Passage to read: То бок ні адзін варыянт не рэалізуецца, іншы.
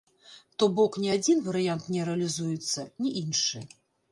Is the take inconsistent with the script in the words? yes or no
yes